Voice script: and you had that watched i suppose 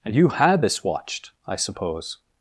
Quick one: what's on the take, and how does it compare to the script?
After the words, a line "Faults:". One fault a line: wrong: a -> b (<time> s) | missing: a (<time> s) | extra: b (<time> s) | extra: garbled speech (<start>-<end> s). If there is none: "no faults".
and you had this watched i suppose
Faults:
wrong: that -> this (0.6 s)